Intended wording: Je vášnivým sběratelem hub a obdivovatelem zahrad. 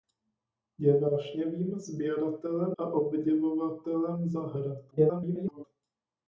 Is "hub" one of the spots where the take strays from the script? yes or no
yes